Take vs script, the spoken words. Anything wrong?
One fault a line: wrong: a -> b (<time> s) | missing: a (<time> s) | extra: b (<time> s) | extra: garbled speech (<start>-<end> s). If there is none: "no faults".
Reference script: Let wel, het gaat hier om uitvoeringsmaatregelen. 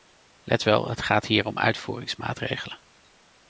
no faults